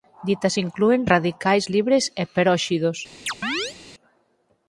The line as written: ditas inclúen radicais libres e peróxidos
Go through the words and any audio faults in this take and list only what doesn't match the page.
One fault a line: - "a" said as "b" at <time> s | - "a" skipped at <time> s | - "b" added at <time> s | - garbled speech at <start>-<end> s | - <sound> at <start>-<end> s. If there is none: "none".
- chirp at 3.3-3.8 s